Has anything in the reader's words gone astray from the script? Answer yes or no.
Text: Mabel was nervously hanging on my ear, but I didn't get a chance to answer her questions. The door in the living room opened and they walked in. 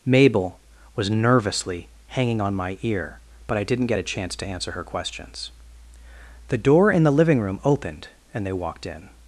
no